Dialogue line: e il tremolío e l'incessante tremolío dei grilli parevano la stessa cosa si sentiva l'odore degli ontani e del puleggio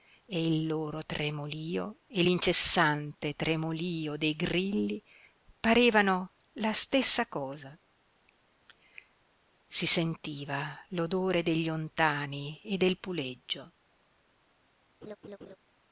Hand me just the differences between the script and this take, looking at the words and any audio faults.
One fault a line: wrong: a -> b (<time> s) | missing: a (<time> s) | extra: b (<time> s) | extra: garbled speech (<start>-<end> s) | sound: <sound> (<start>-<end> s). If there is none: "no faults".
extra: loro (0.7 s)
sound: laugh (15.0-15.6 s)